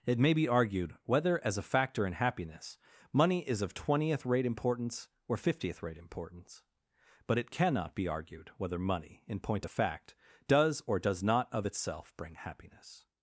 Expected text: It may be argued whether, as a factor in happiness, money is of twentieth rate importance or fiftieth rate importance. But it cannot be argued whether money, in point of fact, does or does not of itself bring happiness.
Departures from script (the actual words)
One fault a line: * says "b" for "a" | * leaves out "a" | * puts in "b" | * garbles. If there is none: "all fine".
all fine